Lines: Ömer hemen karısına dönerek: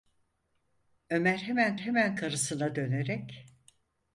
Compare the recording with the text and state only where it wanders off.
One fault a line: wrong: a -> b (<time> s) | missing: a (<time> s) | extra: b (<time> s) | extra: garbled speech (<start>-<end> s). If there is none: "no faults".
extra: hemen (1.7 s)